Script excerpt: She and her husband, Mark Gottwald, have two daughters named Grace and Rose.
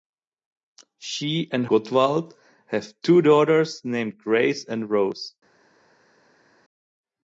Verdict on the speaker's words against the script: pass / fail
fail